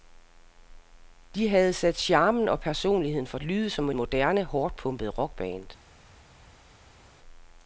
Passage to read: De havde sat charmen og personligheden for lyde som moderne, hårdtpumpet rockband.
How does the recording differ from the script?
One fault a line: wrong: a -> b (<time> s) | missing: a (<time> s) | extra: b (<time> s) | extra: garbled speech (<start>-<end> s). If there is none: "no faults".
no faults